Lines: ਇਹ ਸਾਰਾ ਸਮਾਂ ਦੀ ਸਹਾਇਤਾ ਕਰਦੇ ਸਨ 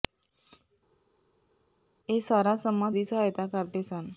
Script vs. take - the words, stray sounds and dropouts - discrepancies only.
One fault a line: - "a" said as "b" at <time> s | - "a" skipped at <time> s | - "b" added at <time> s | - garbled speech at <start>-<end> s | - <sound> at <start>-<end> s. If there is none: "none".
none